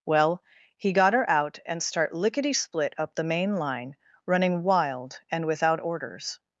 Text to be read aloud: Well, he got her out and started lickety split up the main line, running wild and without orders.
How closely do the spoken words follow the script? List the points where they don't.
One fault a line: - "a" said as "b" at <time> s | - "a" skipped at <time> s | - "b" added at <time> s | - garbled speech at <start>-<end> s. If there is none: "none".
- "started" said as "start" at 1.8 s